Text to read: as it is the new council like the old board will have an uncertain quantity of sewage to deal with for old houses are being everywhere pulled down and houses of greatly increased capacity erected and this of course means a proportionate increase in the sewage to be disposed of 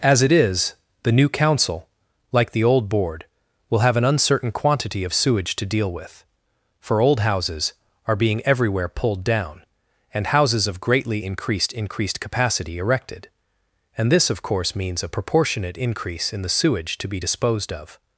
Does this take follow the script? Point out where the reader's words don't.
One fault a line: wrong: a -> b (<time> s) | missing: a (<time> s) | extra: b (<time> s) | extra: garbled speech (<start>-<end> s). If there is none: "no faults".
extra: increased (11.7 s)